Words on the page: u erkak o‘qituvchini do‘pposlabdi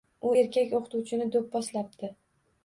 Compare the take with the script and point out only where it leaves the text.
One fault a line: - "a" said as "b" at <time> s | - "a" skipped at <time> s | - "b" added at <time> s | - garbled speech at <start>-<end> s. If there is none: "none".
none